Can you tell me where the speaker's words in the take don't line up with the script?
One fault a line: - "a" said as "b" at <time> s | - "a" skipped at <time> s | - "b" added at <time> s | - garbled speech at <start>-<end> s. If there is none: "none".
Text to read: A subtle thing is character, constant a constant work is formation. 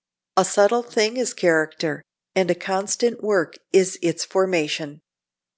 - "constant" said as "and" at 2.3 s
- "its" added at 4.0 s